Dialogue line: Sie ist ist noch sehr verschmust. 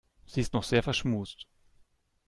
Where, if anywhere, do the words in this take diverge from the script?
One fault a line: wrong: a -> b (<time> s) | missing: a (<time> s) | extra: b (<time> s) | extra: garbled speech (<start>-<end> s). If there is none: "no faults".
missing: ist (0.6 s)